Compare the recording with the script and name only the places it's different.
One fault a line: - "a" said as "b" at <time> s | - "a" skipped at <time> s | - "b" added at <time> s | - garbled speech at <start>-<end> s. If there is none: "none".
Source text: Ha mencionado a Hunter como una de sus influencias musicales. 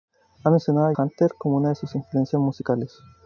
none